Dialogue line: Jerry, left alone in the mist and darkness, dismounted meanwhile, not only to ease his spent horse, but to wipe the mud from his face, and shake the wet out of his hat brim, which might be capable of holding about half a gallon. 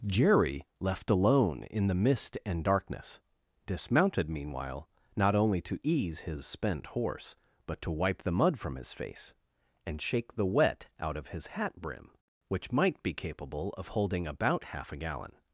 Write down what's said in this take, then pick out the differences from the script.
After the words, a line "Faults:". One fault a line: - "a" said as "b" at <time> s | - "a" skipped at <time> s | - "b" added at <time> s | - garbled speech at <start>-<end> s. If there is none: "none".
Jerry, left alone in the mist and darkness, dismounted meanwhile, not only to ease his spent horse, but to wipe the mud from his face, and shake the wet out of his hat brim, which might be capable of holding about half a gallon.
Faults:
none